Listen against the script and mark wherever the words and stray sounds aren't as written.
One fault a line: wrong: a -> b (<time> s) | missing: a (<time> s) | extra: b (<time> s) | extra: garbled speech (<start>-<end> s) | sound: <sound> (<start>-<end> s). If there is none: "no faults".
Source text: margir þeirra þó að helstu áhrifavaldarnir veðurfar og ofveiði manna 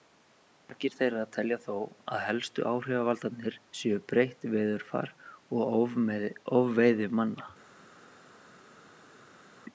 extra: telja (1.4 s)
extra: séu breytt (3.8 s)